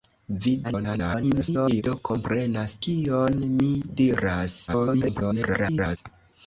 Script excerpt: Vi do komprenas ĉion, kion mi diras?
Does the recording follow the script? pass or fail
fail